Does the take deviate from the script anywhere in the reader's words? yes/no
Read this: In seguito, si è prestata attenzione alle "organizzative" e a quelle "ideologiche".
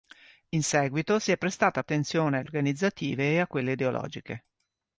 no